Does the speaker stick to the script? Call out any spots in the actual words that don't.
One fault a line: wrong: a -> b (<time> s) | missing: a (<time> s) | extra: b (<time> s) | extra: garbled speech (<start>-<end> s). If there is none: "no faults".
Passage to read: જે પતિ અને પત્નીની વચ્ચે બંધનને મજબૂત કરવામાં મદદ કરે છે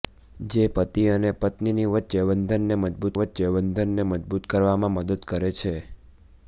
extra: વચ્ચે બંધનને મજબૂત (3.2 s)